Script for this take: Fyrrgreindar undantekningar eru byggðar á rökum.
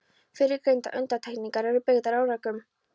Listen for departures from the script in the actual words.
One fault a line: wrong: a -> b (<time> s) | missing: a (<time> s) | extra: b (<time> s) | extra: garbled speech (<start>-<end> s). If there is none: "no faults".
no faults